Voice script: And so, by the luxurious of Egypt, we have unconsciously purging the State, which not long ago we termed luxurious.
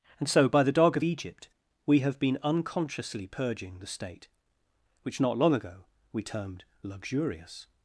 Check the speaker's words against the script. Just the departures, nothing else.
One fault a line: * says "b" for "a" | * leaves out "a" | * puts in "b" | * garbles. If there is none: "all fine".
* says "dog" for "luxurious"
* puts in "been"